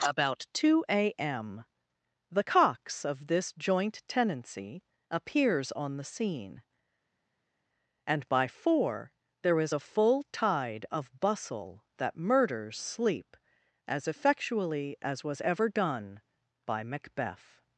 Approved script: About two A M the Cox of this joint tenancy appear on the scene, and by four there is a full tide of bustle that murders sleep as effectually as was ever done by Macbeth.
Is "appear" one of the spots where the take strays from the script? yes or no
yes